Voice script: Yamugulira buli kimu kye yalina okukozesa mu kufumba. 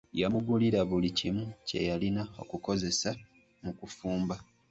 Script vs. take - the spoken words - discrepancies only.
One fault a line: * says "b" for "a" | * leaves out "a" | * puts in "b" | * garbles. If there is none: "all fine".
all fine